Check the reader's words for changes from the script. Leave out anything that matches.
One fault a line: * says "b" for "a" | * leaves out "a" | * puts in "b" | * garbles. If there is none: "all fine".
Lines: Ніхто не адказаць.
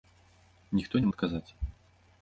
all fine